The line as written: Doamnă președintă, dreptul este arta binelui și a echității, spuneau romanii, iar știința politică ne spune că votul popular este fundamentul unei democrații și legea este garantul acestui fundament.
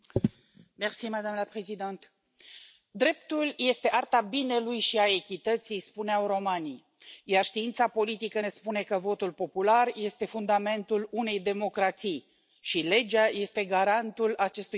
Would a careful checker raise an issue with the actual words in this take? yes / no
no